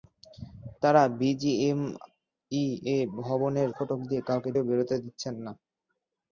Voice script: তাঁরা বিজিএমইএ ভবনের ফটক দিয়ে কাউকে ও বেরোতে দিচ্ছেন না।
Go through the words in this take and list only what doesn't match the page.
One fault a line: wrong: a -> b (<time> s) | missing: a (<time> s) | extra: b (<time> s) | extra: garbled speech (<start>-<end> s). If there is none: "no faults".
no faults